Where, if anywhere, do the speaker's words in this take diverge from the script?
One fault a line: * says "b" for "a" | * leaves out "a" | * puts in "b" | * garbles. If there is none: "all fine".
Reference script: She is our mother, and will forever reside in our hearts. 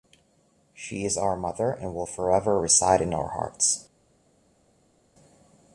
all fine